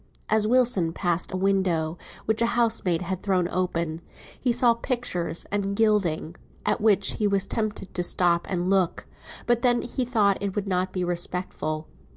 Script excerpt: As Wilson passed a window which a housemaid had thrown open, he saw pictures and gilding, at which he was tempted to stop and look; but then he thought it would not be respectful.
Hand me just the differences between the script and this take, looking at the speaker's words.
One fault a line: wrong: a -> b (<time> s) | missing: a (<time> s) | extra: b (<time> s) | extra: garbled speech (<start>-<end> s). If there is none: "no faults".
no faults